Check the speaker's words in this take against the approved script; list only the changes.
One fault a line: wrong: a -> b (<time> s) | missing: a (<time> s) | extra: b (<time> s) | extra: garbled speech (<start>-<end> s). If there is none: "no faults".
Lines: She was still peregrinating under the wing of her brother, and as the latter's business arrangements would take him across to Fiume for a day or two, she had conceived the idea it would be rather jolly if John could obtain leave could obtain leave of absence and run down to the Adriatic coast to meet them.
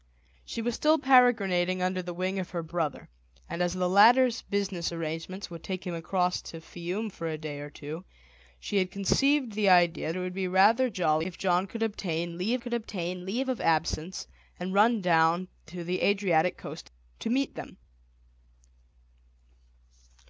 no faults